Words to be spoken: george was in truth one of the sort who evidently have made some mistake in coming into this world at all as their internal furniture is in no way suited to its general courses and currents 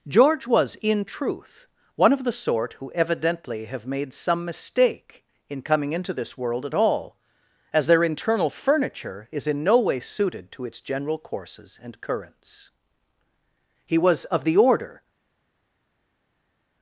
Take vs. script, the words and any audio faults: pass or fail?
fail